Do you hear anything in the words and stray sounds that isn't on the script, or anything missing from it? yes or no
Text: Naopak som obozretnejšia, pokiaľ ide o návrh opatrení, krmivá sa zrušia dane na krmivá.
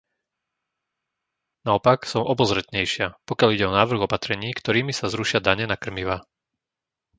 yes